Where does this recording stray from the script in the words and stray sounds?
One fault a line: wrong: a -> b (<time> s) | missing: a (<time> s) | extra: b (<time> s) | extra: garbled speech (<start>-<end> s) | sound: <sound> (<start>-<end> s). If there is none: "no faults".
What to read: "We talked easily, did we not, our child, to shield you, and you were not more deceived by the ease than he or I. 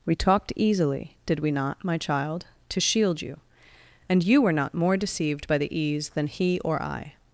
wrong: our -> my (1.9 s)